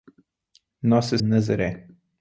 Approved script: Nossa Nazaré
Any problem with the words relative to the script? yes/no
no